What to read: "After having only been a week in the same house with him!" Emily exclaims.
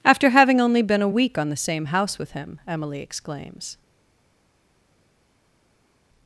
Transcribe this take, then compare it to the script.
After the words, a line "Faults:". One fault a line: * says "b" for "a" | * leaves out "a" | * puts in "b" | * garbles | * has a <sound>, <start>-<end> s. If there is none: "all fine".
"After having only been a week on the same house with him!" Emily exclaims.
Faults:
* says "on" for "in"